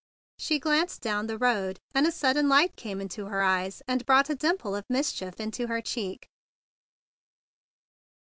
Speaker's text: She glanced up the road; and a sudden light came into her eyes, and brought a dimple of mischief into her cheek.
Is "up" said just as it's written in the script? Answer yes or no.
no